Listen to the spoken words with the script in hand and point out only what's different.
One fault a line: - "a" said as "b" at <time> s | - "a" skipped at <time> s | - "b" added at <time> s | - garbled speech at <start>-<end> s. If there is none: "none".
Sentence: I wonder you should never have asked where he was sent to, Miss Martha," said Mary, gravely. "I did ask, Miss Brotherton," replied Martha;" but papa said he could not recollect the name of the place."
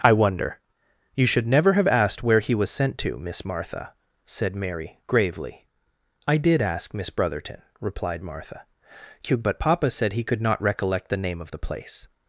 none